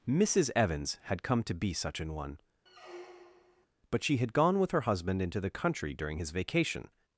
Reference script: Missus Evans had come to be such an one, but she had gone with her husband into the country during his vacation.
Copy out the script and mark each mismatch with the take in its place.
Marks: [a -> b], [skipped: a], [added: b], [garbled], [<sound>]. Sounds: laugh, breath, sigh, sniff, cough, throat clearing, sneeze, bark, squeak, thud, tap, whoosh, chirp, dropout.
Missus Evans had come to be such an one, [squeak] but she had gone with her husband into the country during his vacation.